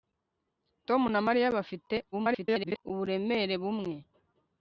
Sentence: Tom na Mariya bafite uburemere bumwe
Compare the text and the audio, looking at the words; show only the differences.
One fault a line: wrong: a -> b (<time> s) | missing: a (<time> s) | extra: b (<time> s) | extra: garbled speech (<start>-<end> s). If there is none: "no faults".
extra: garbled speech (2.1-2.8 s)